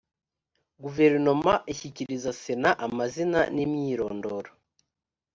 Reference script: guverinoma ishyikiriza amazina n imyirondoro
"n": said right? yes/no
yes